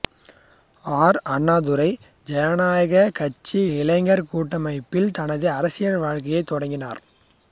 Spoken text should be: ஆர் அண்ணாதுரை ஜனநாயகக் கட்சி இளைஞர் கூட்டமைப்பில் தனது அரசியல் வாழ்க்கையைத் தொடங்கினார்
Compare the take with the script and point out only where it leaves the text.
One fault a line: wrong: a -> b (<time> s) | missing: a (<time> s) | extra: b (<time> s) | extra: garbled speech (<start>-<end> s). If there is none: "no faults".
no faults